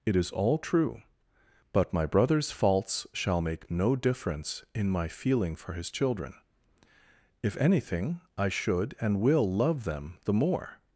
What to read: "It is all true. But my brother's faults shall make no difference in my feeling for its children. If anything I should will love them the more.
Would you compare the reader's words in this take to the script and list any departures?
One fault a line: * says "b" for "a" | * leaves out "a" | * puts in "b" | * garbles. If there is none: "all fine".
* says "his" for "its"
* puts in "and"